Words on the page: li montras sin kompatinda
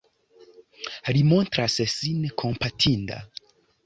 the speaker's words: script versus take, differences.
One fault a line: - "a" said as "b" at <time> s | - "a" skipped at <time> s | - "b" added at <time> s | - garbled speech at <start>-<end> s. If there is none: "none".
none